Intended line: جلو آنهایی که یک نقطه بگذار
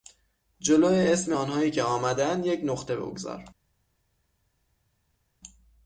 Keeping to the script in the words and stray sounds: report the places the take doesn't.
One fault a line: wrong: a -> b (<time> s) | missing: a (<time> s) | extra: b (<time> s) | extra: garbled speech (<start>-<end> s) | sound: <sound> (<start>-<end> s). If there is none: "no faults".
extra: اسم (0.9 s)
extra: آمدهاند (1.8 s)